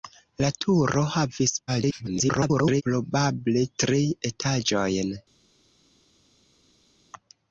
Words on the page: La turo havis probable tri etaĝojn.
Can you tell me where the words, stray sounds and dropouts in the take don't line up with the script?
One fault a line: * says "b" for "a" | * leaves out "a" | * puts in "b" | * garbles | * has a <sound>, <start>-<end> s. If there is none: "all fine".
* garbles